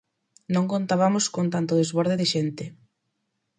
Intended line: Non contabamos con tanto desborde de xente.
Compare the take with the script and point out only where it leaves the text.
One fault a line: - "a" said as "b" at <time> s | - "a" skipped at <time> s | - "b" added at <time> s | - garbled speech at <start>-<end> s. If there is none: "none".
none